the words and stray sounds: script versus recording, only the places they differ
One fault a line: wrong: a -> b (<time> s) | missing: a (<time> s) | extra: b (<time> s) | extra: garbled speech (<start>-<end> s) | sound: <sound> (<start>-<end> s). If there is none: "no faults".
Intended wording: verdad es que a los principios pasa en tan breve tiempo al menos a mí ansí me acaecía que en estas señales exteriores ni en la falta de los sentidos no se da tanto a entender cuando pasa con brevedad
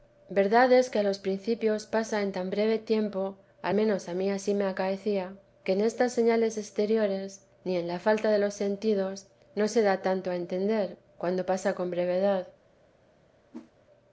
sound: whoosh (13.5-13.7 s)